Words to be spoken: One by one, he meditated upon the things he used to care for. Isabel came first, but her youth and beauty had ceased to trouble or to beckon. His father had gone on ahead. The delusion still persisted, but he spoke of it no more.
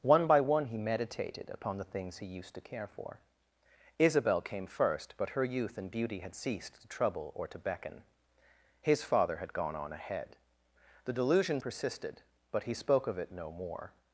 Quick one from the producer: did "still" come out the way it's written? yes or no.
no